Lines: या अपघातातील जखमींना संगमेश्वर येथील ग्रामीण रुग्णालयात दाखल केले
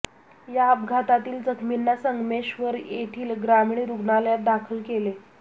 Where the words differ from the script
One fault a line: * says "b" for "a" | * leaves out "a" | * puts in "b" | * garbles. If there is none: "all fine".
all fine